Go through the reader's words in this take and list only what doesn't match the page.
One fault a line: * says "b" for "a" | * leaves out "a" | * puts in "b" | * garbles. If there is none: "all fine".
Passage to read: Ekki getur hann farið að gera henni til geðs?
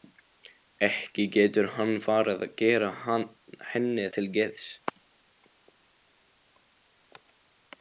all fine